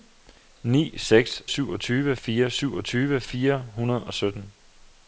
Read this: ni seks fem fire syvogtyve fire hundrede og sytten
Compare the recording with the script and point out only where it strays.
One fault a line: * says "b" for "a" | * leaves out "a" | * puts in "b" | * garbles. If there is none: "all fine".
* says "syvogtyve" for "fem"